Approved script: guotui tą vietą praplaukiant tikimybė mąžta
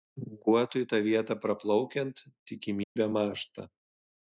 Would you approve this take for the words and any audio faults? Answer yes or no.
no